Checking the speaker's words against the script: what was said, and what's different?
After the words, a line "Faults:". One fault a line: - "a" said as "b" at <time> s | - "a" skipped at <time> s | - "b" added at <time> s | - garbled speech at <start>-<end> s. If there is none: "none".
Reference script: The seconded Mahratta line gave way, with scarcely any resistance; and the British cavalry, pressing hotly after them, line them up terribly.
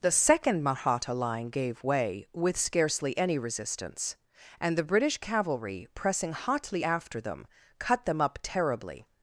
The second Mahratta line gave way, with scarcely any resistance; and the British cavalry, pressing hotly after them, cut them up terribly.
Faults:
- "seconded" said as "second" at 0.1 s
- "line" said as "cut" at 7.8 s